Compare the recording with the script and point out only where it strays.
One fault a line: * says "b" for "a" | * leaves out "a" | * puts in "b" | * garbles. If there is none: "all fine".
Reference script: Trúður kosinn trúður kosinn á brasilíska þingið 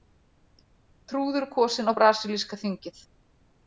* leaves out "trúður kosinn"